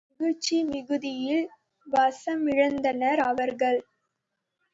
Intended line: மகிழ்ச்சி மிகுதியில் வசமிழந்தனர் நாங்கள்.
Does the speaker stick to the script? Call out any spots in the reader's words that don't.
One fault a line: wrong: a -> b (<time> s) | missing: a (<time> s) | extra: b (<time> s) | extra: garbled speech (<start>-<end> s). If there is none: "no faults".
wrong: நாங்கள் -> அவர்கள் (3.2 s)